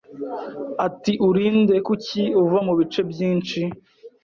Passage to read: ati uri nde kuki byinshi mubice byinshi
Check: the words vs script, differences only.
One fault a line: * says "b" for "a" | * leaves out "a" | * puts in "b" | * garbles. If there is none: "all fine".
* says "uva" for "byinshi"